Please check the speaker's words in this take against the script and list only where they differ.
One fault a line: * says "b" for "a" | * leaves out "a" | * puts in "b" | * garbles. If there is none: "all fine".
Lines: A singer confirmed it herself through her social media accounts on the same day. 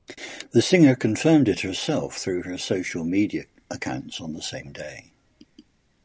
* says "The" for "A"